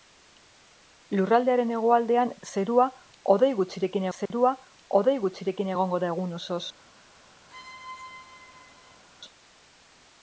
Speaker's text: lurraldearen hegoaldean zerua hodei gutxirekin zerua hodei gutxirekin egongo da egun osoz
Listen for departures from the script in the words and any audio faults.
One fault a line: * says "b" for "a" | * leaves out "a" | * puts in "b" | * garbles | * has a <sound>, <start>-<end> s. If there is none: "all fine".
* has a dropout, 4.3-4.3 s
* has a squeak, 7.5-9.0 s